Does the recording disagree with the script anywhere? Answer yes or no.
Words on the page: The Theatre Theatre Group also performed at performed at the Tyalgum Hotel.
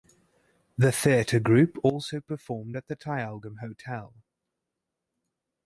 yes